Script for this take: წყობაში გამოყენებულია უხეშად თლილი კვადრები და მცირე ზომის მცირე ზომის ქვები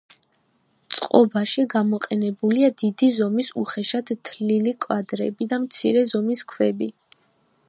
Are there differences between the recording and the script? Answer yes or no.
yes